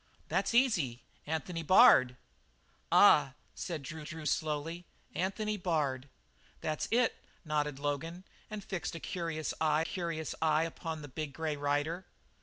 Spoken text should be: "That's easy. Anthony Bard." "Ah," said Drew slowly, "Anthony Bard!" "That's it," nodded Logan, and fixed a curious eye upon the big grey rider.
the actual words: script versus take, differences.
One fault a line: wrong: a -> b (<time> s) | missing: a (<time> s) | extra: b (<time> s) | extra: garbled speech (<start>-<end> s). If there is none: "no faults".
extra: Drew (4.0 s)
extra: curious eye (9.8 s)